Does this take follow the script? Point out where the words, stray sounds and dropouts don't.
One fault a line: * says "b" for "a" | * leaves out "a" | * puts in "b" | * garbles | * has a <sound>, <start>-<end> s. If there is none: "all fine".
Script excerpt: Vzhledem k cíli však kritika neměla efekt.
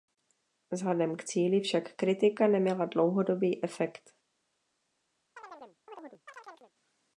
* puts in "dlouhodobý"
* has a chirp, 5.4-6.7 s